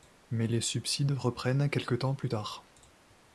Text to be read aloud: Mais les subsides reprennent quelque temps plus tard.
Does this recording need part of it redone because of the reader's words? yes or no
no